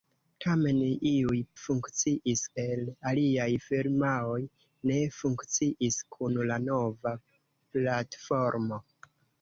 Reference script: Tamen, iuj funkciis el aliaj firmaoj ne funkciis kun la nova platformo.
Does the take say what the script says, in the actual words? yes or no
yes